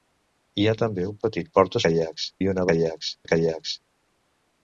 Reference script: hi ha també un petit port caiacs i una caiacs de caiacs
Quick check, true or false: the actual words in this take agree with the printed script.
true